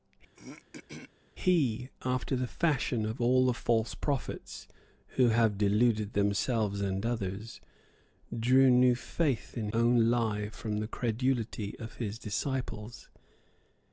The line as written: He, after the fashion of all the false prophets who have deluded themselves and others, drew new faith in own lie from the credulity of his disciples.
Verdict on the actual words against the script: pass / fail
pass